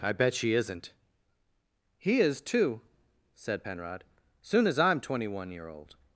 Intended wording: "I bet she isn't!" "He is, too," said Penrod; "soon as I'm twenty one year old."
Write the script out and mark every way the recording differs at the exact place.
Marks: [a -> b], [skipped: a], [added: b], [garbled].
"I bet she isn't!" "He is, too," said Penrod; "soon as I'm twenty one year old."